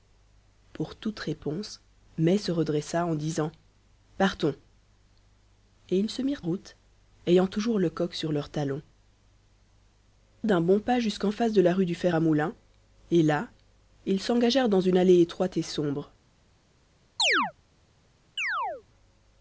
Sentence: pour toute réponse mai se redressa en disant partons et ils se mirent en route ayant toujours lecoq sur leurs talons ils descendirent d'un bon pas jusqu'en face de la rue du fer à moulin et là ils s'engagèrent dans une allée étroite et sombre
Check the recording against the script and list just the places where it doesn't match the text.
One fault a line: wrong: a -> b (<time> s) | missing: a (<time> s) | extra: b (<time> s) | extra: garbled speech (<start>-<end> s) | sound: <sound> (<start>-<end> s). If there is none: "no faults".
missing: en (6.4 s)
missing: ils descendirent (8.8 s)
sound: chirp (17.2-17.5 s)
sound: chirp (18.4-18.8 s)